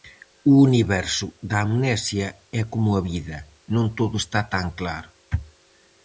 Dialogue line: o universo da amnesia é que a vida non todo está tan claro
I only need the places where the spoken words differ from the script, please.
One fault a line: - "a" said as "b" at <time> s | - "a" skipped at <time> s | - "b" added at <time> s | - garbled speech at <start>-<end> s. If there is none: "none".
- "que" said as "como" at 2.7 s